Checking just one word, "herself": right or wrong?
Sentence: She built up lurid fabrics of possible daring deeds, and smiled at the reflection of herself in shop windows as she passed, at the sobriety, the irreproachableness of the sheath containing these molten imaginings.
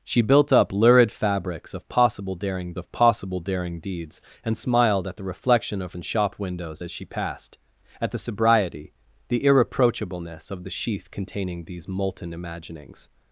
wrong